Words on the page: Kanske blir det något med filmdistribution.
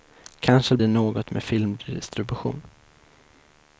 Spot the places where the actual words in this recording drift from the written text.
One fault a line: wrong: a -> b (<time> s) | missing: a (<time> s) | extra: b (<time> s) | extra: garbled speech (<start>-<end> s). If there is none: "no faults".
missing: blir (0.8 s)